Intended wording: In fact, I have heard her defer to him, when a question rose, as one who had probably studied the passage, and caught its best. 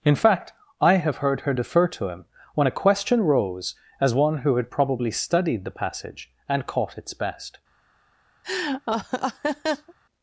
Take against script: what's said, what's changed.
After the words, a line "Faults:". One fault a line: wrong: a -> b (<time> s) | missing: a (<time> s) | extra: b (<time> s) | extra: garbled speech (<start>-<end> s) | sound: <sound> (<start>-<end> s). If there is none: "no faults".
In fact, I have heard her defer to him, when a question rose, as one who had probably studied the passage, and caught its best.
Faults:
sound: laugh (8.4-9.9 s)